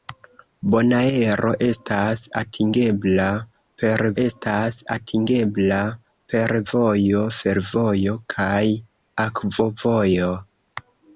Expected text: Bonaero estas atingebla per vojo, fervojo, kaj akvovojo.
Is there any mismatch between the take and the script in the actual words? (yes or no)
yes